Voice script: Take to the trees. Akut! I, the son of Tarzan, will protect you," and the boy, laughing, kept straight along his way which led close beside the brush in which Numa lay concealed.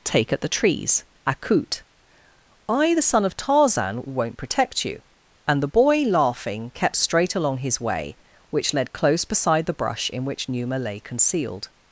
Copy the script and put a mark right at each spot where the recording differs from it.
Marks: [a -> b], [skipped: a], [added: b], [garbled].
Take [to -> at] the trees. Akut! I, the son of Tarzan, [will -> won't] protect you," and the boy, laughing, kept straight along his way which led close beside the brush in which Numa lay concealed.